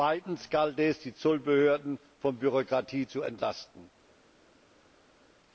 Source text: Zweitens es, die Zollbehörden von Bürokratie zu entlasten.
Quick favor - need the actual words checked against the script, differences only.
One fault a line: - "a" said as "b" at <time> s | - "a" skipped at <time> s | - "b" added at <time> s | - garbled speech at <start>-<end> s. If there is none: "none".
- "galt" added at 0.5 s